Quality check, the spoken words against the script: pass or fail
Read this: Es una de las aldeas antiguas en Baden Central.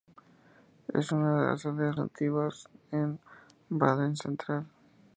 pass